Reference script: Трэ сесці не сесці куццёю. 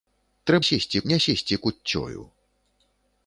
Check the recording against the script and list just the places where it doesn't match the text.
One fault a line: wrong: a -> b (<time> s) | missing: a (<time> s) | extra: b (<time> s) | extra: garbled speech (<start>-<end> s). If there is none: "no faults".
no faults